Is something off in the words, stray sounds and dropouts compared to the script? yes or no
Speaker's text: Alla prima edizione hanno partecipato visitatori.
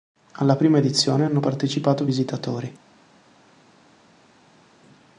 no